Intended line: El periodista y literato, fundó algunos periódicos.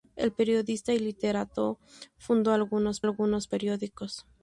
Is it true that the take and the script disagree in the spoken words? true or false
true